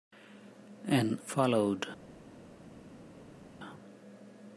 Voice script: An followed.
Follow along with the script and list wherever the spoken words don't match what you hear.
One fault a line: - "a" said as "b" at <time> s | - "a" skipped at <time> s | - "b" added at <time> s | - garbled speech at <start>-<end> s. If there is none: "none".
none